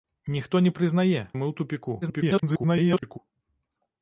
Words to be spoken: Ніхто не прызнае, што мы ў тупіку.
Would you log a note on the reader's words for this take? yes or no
yes